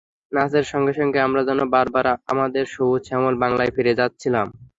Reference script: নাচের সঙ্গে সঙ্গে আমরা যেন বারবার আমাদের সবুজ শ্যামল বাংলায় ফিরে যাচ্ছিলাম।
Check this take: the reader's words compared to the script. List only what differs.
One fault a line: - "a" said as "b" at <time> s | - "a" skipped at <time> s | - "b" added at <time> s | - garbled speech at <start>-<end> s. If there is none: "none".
none